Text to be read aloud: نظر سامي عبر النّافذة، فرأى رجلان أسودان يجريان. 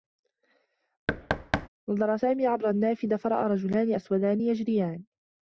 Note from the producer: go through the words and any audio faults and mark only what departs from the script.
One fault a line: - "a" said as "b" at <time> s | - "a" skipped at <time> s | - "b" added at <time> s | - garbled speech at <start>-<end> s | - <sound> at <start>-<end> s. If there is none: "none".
- thud at 1.1-1.7 s